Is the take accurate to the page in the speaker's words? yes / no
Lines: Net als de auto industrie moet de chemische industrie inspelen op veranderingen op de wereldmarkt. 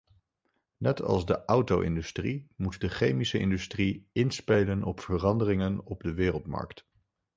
yes